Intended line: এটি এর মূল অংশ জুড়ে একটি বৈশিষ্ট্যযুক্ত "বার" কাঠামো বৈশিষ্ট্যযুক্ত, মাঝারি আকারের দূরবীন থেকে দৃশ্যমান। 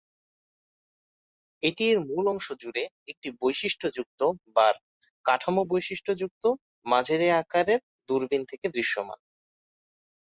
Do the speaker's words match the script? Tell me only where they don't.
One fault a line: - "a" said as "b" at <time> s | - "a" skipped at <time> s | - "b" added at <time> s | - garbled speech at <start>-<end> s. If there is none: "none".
none